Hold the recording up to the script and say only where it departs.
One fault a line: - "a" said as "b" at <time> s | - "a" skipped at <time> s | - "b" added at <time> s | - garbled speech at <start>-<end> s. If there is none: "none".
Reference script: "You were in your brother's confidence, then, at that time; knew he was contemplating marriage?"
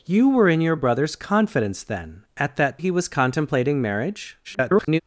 - "time knew" skipped at 2.8 s
- garbled speech at 4.4-5.0 s